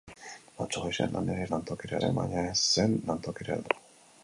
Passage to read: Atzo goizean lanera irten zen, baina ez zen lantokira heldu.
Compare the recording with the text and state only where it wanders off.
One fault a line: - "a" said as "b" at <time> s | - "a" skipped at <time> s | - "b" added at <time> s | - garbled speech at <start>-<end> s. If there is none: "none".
- "irten" said as "lantokira" at 1.6 s